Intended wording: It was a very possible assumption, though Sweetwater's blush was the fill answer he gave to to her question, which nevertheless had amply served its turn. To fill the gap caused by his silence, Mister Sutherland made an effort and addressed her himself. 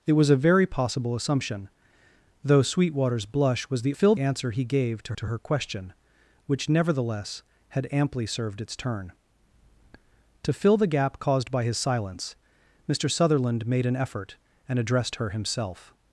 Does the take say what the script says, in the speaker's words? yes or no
yes